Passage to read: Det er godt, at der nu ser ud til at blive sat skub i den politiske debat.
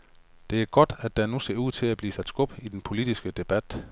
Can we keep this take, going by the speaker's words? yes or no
yes